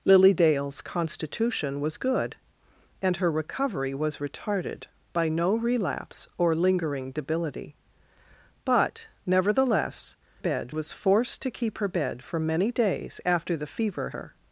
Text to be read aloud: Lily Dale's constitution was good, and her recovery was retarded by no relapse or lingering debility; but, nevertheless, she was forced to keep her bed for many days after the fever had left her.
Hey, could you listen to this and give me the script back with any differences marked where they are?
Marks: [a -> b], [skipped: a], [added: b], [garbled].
Lily Dale's constitution was good, and her recovery was retarded by no relapse or lingering debility; but, nevertheless, [she -> bed] was forced to keep her bed for many days after the fever [skipped: had left] her.